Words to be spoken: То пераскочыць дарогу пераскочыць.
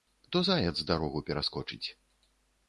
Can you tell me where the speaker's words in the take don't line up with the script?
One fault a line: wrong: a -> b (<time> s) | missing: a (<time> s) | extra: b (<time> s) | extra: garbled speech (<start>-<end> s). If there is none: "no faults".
wrong: пераскочыць -> заяц (0.5 s)